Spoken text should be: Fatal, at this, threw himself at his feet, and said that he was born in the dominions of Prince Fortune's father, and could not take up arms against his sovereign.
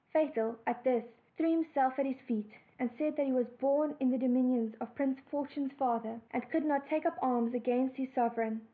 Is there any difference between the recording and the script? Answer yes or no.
no